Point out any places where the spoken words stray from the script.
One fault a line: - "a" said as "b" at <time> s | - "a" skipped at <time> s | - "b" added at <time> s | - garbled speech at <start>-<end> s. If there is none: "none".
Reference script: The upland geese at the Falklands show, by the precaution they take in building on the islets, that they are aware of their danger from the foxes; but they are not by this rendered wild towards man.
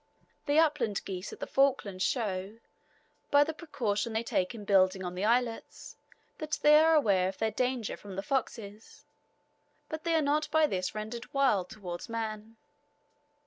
none